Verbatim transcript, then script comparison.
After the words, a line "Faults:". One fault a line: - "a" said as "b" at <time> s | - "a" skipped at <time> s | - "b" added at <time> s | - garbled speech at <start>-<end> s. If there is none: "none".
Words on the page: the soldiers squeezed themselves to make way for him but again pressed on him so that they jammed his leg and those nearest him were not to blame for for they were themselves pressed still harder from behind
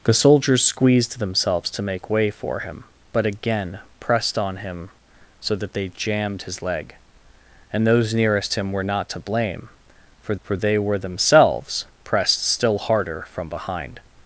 the soldiers squeezed themselves to make way for him but again pressed on him so that they jammed his leg and those nearest him were not to blame for for they were themselves pressed still harder from behind
Faults:
none